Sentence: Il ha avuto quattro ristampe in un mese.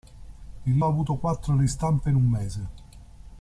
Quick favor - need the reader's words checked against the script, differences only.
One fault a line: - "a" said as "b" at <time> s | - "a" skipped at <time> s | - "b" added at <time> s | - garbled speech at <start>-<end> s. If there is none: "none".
none